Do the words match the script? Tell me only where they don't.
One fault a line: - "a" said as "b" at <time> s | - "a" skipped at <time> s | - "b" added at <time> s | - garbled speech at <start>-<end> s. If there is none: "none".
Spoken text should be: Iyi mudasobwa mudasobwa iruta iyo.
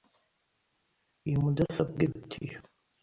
- "mudasobwa" skipped at 2.0 s